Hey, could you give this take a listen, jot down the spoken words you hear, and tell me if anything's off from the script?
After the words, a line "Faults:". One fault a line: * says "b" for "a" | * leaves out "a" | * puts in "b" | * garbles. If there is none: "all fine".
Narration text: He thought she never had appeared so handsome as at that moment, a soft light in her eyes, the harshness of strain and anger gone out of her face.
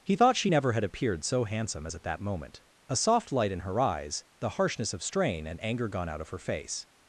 He thought she never had appeared so handsome as at that moment, a soft light in her eyes, the harshness of strain and anger gone out of her face.
Faults:
all fine